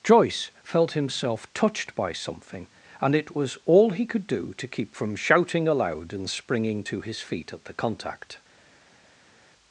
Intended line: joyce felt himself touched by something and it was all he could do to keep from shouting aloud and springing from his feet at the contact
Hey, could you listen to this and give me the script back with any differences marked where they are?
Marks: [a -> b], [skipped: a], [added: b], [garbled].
joyce felt himself touched by something and it was all he could do to keep from shouting aloud and springing [from -> to] his feet at the contact